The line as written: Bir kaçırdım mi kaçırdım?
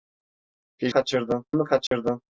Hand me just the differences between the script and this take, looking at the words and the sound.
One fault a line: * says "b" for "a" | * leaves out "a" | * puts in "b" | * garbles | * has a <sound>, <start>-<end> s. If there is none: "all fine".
* has a dropout, 1.9-1.9 s